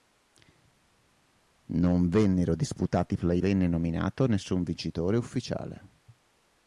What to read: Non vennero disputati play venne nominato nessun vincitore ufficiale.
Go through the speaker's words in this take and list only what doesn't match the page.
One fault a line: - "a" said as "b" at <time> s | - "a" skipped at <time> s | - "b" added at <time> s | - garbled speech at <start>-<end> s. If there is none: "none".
none